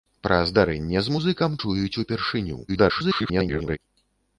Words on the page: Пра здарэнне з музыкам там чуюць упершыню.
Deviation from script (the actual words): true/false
true